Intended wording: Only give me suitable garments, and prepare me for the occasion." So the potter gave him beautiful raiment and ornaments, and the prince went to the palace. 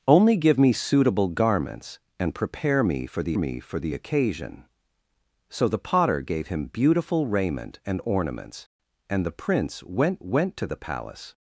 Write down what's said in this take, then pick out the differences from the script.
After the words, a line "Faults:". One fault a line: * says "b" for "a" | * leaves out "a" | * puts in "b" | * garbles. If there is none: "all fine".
Only give me suitable garments, and prepare me for the me for the occasion." So the potter gave him beautiful raiment and ornaments, and the prince went went to the palace.
Faults:
* puts in "me for the"
* puts in "went"